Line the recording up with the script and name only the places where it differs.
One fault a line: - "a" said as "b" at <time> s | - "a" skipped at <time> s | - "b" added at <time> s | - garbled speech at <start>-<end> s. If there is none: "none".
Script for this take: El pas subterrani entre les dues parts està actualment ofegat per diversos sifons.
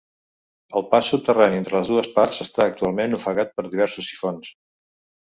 none